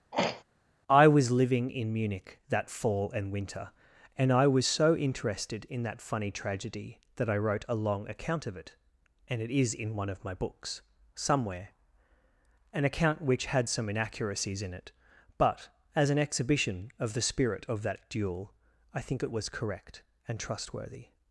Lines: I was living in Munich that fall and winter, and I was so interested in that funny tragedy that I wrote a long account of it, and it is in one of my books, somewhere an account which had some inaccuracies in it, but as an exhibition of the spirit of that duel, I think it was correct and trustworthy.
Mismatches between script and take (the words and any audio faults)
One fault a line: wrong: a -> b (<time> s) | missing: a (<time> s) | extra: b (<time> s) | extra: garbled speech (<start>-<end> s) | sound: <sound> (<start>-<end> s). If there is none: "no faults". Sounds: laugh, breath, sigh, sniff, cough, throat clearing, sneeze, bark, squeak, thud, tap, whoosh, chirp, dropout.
sound: throat clearing (0.1-0.4 s)